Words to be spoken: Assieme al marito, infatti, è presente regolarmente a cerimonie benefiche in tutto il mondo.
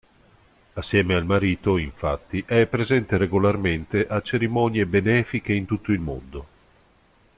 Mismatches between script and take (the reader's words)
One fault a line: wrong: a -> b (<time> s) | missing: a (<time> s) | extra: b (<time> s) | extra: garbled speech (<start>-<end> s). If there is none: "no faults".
no faults